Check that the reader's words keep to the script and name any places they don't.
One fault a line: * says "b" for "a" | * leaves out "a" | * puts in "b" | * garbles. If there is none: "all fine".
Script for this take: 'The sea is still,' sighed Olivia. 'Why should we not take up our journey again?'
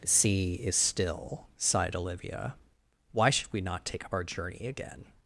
all fine